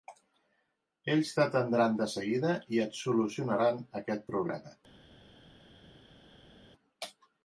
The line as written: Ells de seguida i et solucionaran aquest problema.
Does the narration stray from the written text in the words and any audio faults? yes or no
yes